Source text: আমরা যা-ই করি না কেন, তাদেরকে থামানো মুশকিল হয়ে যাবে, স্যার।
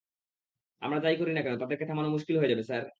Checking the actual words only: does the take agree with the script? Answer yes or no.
yes